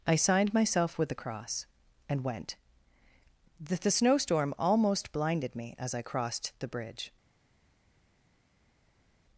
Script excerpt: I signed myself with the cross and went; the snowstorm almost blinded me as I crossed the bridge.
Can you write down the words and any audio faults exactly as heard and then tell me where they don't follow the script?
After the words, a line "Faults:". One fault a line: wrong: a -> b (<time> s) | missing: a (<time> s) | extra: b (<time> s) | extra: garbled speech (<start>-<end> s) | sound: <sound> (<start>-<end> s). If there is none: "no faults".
I signed myself with the cross and went; the the snowstorm almost blinded me as I crossed the bridge.
Faults:
extra: the (3.8 s)